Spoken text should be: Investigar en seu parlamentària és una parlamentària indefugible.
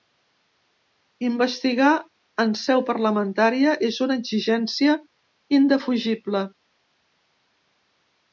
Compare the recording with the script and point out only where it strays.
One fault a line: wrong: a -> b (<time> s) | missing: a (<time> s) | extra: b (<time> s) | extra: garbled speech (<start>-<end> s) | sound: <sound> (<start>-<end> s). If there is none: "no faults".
wrong: parlamentària -> exigència (4.2 s)